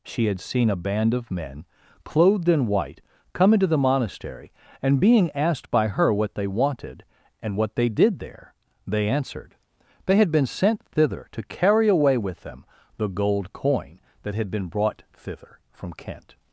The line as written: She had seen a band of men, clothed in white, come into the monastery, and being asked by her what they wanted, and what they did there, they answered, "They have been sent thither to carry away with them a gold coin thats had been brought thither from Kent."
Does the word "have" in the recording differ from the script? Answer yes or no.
yes